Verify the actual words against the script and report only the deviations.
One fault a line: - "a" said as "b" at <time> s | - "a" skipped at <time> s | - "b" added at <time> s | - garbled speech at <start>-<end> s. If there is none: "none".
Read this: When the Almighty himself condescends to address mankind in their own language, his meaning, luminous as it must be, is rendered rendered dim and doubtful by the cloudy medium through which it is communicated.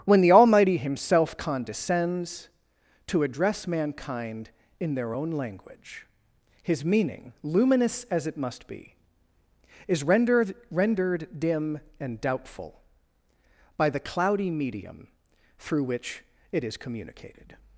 none